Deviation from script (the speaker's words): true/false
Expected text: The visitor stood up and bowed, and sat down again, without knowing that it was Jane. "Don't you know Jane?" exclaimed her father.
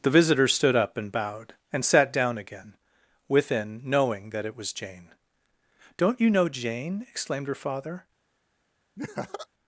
true